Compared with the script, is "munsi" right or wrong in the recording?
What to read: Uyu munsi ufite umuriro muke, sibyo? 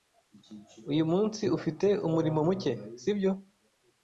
right